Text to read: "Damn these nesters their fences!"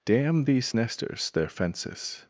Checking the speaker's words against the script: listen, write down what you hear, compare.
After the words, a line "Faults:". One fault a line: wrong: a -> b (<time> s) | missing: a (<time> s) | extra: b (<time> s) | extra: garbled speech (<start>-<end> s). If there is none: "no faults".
"Damn these nesters their fences!"
Faults:
no faults